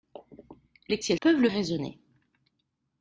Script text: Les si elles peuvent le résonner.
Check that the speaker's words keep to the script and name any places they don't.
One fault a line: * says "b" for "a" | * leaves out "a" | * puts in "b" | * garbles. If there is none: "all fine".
all fine